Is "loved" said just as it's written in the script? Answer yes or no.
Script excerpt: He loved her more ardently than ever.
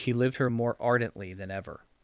no